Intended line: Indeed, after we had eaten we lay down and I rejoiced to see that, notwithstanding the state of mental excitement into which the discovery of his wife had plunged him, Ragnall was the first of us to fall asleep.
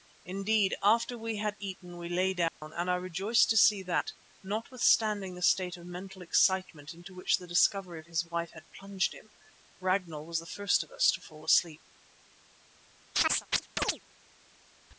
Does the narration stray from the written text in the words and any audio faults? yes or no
yes